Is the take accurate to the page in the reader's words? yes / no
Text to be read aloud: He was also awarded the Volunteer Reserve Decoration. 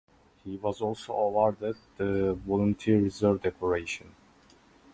yes